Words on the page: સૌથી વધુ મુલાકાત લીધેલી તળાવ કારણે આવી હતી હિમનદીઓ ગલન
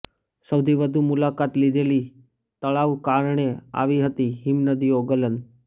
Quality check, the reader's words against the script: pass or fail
pass